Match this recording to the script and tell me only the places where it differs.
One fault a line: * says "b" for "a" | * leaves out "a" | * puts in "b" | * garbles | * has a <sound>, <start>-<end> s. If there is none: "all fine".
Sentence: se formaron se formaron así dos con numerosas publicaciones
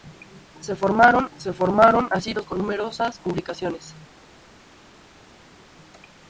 all fine